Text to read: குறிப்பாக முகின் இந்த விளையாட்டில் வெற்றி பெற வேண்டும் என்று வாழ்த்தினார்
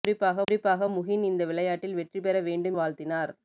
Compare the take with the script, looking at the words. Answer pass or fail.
fail